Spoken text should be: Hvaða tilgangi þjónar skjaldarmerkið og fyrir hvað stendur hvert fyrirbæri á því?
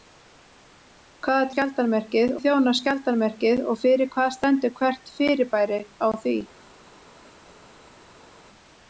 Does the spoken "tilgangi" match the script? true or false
false